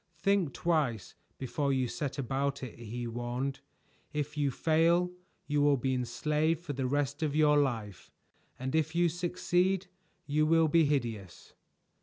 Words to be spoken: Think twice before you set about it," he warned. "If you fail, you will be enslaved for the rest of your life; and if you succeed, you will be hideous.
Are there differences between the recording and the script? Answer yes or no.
no